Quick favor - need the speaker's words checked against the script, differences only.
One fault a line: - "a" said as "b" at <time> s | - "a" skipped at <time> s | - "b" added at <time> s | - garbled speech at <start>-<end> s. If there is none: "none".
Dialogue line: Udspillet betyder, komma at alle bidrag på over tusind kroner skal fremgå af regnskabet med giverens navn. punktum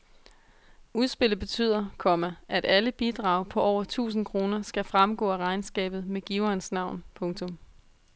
none